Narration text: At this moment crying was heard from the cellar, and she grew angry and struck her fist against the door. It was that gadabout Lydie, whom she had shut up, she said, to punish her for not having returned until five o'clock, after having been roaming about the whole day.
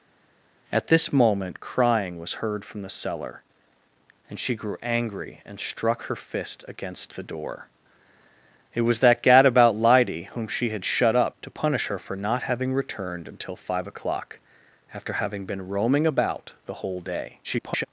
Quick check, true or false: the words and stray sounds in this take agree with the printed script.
false